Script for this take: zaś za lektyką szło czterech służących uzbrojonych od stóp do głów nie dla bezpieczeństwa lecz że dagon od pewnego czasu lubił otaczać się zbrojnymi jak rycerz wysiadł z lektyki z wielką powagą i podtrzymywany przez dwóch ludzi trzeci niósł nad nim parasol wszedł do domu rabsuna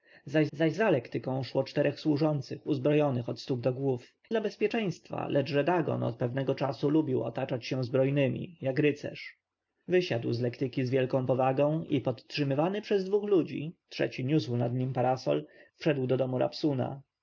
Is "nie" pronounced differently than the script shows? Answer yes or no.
yes